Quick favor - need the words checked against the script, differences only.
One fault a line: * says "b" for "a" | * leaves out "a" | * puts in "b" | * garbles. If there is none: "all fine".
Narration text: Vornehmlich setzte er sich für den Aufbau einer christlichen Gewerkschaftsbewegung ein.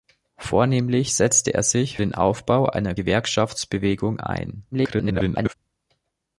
* leaves out "für"
* leaves out "christlichen"
* garbles